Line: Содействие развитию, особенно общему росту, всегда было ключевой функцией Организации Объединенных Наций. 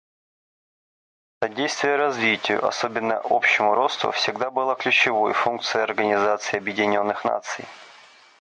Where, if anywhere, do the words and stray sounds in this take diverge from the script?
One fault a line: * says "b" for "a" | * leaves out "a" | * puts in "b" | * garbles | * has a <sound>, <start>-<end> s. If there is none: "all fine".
all fine